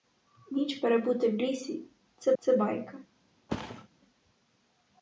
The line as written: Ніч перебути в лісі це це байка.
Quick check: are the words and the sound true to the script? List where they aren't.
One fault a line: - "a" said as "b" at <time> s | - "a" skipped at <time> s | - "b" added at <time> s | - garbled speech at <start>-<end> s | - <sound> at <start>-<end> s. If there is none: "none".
- thud at 3.5-3.9 s